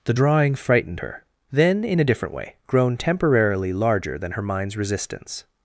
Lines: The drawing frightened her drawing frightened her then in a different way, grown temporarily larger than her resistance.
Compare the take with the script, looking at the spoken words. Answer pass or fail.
fail